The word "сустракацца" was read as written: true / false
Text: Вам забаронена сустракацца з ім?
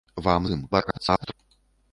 false